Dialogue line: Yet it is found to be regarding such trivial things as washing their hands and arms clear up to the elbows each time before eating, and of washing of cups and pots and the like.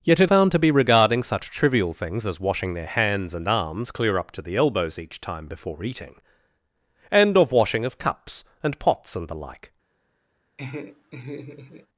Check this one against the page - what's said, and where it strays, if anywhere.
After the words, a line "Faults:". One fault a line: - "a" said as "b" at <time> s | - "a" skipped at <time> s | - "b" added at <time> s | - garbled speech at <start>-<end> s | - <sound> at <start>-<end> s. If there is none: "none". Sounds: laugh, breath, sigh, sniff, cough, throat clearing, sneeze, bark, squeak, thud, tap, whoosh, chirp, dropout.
Yet it found to be regarding such trivial things as washing their hands and arms clear up to the elbows each time before eating, and of washing of cups and pots and the like.
Faults:
- "is" skipped at 0.3 s
- laugh at 10.6-11.9 s